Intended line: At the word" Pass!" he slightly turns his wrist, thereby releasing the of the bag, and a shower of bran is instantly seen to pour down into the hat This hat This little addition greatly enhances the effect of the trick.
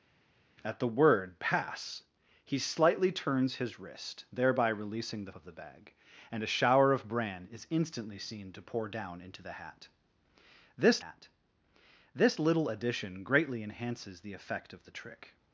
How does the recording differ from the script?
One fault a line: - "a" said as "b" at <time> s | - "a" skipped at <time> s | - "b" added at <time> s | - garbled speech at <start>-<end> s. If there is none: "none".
none